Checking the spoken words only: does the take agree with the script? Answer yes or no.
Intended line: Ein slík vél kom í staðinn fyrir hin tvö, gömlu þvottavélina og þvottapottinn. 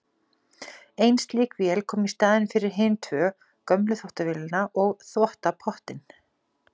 yes